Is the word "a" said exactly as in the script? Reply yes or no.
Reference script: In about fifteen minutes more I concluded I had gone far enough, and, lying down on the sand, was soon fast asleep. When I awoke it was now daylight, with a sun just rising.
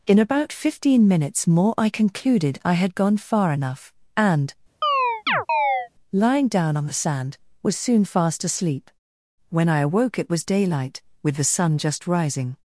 no